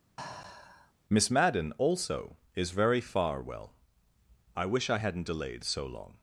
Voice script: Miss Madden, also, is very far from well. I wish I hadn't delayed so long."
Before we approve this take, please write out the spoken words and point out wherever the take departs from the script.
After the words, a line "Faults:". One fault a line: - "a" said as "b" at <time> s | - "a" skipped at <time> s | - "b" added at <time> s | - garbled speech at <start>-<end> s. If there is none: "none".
Miss Madden, also, is very far well. I wish I hadn't delayed so long."
Faults:
- "from" skipped at 3.4 s